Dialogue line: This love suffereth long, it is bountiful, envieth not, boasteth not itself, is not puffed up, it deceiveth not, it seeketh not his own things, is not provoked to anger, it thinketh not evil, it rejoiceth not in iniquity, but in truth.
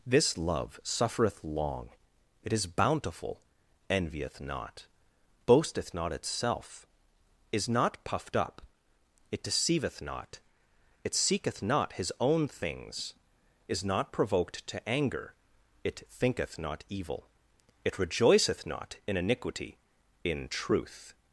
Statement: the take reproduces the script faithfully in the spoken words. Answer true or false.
false